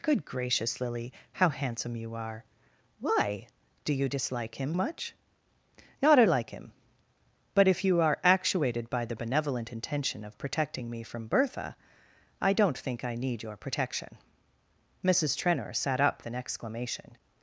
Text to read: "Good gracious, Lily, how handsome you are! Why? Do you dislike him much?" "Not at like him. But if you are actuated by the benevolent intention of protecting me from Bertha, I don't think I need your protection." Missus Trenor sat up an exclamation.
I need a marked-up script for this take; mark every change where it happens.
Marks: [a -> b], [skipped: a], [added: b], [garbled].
"Good gracious, Lily, how handsome you are! Why? Do you dislike him much?" "Not at like him. But if you are actuated by the benevolent intention of protecting me from Bertha, I don't think I need your protection." Missus Trenor sat up an exclamation.